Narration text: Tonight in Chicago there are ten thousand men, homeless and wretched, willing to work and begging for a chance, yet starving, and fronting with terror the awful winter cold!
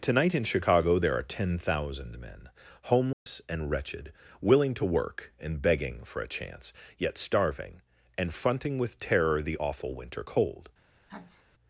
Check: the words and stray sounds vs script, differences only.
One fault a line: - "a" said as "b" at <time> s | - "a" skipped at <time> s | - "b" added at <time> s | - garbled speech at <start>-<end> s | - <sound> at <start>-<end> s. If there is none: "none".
- dropout at 3.1-3.3 s
- sneeze at 11.1-11.4 s